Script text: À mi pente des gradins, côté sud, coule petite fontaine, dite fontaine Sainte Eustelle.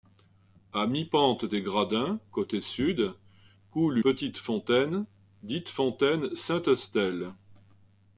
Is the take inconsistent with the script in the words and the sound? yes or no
no